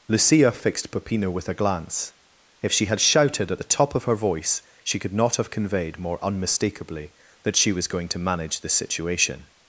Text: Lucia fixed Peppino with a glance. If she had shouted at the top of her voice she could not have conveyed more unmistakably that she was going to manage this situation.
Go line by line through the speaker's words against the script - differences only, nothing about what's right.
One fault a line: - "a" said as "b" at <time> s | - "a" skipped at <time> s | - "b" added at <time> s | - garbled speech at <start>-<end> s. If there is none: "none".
none